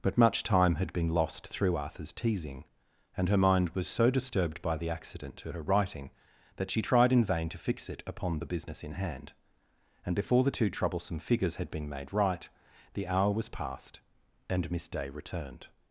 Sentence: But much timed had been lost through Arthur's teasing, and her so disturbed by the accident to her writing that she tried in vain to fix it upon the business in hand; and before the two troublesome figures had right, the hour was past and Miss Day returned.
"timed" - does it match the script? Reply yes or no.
no